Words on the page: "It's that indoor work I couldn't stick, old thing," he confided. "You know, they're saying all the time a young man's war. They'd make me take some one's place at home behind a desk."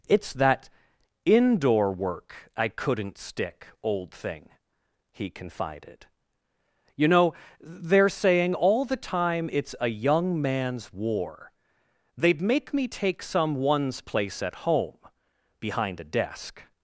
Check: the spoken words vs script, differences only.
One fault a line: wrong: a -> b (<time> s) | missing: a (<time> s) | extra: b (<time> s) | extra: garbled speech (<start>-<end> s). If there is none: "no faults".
extra: it's (9.5 s)